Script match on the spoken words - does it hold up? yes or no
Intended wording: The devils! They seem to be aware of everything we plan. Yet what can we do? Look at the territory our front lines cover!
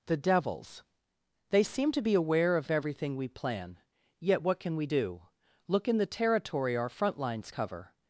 no